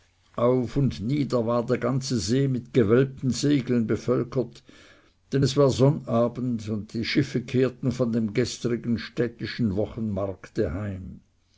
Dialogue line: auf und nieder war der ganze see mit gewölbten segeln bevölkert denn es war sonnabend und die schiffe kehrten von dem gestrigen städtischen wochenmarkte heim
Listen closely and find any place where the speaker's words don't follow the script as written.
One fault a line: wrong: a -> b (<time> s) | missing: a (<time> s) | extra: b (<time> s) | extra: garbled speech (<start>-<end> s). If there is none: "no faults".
no faults